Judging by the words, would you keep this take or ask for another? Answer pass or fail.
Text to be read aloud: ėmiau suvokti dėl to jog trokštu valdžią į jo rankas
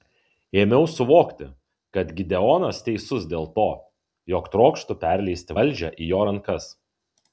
fail